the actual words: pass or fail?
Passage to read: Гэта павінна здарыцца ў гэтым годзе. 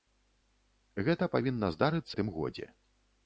fail